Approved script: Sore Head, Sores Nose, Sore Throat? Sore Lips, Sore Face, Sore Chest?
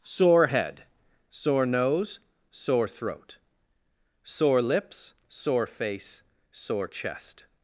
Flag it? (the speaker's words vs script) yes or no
yes